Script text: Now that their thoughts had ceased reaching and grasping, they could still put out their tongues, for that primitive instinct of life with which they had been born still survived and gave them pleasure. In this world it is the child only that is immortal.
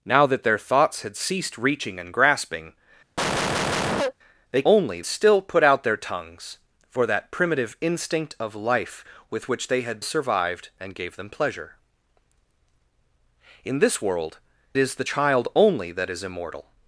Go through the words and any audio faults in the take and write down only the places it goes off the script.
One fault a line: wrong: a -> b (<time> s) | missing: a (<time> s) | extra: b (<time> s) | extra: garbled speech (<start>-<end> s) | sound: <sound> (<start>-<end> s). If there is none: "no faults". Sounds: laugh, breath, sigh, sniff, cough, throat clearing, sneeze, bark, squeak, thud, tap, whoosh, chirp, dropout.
sound: cough (3.2-4.1 s)
wrong: could -> only (4.6 s)
missing: been born still (10.0 s)
missing: it (14.4 s)